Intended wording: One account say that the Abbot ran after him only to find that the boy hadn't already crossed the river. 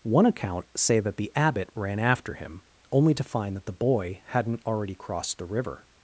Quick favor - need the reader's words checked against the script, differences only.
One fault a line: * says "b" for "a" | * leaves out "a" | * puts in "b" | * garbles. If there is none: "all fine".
all fine